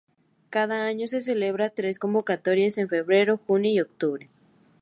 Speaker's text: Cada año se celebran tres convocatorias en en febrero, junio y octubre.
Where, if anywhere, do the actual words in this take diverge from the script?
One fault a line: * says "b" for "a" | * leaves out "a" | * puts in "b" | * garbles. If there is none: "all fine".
* leaves out "en"